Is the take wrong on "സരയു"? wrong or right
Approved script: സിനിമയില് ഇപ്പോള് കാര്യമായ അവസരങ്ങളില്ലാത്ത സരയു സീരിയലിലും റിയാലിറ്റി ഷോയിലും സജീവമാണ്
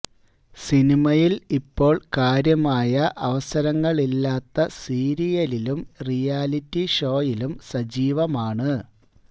wrong